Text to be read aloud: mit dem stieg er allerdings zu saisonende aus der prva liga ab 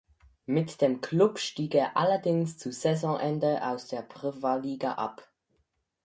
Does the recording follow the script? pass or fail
fail